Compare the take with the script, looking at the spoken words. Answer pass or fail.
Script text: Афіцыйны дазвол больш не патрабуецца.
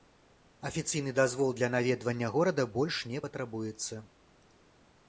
fail